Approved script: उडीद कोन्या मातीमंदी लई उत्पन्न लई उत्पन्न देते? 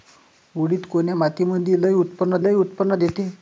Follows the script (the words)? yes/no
yes